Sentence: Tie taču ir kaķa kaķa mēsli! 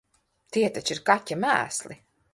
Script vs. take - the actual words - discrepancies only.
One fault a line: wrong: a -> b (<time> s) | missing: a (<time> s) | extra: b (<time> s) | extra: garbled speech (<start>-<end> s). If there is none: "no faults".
missing: kaķa (1.4 s)